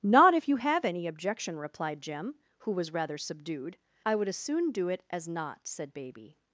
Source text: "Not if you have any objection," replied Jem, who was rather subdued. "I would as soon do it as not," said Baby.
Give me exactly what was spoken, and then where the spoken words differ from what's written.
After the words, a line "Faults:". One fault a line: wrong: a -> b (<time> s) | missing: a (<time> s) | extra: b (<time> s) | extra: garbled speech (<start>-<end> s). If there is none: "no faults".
"Not if you have any objection," replied Jem, who was rather subdued. "I would as soon do it as not," said Baby.
Faults:
no faults